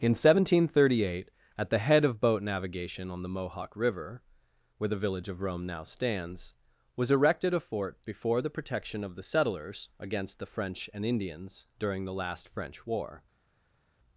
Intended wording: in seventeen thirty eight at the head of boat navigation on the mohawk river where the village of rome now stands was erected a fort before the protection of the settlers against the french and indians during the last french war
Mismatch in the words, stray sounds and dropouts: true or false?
false